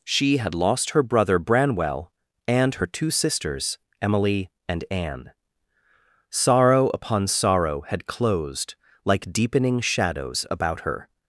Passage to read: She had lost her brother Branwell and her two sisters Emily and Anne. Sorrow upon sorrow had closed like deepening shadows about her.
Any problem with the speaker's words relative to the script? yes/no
no